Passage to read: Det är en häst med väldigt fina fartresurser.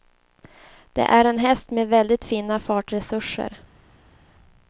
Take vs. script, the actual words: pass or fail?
pass